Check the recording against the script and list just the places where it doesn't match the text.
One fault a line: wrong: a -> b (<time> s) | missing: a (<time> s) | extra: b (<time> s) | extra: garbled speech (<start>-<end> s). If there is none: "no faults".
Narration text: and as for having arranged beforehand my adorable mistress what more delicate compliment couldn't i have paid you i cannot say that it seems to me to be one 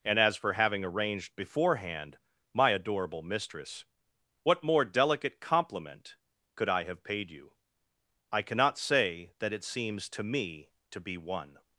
wrong: couldn't -> could (6.6 s)